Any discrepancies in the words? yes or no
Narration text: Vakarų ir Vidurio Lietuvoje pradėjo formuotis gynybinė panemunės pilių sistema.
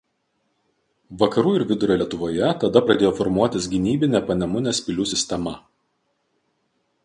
yes